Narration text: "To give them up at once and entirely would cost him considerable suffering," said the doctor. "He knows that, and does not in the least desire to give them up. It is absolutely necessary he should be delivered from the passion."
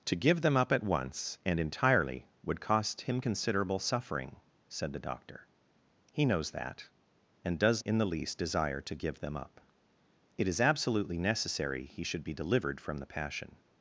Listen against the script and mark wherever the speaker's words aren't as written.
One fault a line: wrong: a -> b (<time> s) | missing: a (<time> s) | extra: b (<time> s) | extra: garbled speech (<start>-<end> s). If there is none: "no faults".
missing: not (7.8 s)